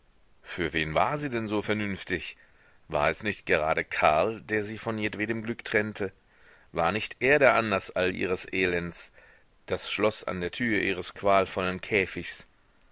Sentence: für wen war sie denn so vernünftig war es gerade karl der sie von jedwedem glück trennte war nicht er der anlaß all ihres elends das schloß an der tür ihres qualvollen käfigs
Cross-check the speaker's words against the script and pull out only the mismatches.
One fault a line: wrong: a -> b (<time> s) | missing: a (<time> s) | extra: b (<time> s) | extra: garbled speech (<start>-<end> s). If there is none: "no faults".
extra: nicht (3.2 s)